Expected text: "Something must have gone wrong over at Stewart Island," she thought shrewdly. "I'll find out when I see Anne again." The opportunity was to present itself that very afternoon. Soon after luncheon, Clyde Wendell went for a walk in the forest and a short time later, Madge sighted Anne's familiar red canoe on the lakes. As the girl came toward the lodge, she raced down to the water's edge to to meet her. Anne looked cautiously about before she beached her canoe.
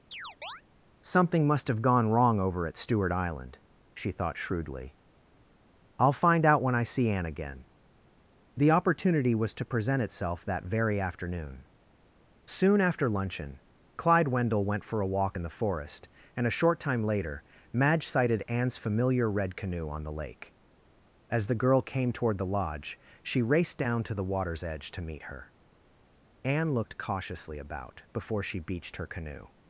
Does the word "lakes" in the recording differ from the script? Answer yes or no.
yes